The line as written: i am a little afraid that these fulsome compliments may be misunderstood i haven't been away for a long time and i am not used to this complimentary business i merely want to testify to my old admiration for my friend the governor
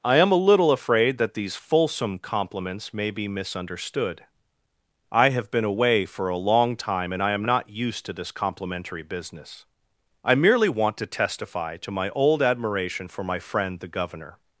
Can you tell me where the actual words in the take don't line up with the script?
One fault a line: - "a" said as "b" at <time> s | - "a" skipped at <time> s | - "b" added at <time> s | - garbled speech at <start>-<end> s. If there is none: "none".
- "haven't" said as "have" at 5.3 s